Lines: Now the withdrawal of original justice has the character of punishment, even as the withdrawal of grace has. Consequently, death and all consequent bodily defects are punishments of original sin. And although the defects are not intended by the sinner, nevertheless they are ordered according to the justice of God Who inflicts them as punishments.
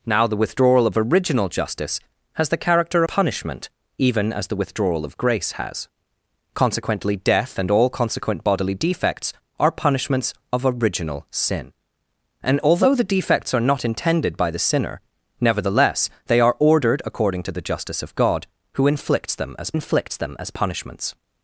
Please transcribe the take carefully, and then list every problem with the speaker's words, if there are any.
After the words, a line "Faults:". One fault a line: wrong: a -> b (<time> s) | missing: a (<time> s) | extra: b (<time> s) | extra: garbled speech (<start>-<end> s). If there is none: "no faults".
Now the withdrawal of original justice has the character punishment, even as the withdrawal of grace has. Consequently, death and all consequent bodily defects are punishments of original sin. And although the defects are not intended by the sinner, nevertheless they are ordered according to the justice of God Who inflicts them as inflicts them as punishments.
Faults:
missing: of (3.0 s)
extra: inflicts them as (19.7 s)